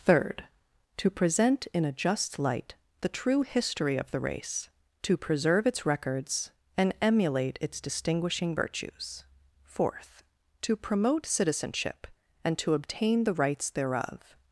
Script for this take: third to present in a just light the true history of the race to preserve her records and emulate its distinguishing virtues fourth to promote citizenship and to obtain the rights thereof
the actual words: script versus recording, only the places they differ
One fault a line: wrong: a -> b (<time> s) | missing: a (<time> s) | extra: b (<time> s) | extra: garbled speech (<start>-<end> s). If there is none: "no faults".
wrong: her -> its (5.7 s)